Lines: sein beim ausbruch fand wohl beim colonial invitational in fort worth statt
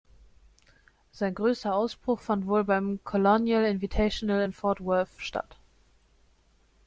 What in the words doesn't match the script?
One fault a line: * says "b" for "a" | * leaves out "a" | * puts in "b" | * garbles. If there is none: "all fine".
* says "größter" for "beim"